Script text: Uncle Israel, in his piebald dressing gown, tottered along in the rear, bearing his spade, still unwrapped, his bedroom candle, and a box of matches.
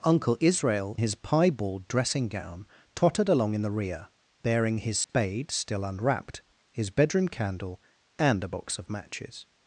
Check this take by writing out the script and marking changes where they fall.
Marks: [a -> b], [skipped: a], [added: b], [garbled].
Uncle Israel, [skipped: in] his piebald dressing gown, tottered along in the rear, bearing his spade, still unwrapped, his bedroom candle, and a box of matches.